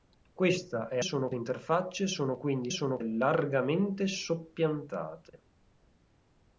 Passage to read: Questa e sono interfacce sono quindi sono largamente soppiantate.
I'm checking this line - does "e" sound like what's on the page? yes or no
yes